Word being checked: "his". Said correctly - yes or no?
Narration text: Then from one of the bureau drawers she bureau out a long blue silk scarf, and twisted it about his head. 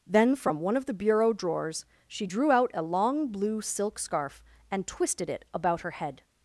no